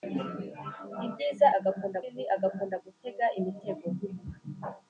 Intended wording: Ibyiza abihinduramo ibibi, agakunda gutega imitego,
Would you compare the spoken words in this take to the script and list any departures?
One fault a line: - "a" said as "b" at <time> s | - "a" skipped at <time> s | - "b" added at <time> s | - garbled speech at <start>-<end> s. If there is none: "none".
- "abihinduramo" said as "agakunda" at 1.6 s